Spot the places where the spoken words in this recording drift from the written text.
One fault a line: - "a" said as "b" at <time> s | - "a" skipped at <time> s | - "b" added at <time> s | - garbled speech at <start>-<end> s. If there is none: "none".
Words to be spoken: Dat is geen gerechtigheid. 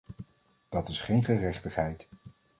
none